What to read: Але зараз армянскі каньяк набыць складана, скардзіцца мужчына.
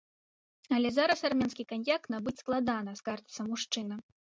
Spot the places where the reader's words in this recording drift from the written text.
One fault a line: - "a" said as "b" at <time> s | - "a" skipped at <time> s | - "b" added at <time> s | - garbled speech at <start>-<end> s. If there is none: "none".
none